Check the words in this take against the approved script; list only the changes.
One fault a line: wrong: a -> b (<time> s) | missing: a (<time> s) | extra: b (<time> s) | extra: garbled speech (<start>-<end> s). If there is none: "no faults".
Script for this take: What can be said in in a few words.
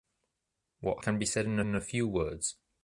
no faults